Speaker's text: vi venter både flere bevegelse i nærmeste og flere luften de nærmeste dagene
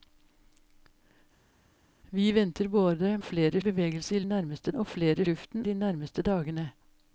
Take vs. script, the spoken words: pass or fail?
pass